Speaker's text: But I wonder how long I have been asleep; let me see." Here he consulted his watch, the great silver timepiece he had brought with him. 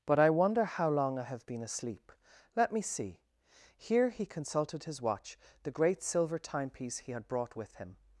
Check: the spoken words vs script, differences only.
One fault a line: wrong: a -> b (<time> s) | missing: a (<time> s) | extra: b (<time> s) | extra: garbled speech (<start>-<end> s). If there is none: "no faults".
no faults